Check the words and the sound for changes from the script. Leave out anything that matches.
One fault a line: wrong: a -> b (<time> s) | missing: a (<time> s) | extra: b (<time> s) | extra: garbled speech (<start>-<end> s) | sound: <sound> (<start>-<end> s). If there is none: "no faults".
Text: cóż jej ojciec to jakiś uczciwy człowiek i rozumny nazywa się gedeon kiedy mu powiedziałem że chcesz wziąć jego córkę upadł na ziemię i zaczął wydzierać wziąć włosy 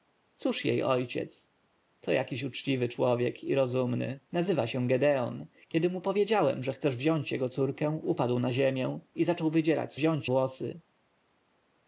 no faults